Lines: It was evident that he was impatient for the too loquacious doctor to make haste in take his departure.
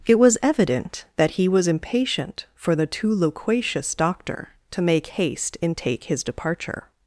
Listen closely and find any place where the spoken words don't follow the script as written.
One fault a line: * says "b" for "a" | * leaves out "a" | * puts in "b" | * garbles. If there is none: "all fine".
all fine